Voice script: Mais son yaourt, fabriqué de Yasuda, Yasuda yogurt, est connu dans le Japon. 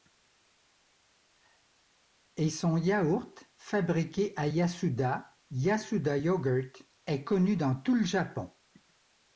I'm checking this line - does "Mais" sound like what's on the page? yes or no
no